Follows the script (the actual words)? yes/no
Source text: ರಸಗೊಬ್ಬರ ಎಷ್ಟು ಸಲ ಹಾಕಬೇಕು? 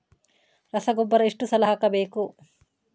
yes